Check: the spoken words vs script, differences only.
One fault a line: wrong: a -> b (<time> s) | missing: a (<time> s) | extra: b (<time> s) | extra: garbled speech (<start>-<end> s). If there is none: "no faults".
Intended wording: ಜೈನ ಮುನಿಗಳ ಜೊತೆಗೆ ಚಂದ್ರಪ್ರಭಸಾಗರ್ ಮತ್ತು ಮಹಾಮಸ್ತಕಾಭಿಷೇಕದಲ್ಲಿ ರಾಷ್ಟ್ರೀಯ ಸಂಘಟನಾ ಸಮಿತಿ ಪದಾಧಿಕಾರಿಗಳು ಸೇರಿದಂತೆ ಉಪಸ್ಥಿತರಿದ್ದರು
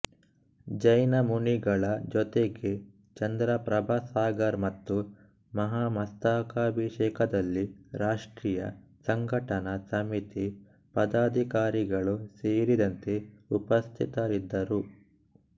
no faults